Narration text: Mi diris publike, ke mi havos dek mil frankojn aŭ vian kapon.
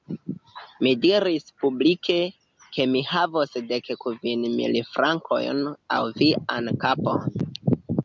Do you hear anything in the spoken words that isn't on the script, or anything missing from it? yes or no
yes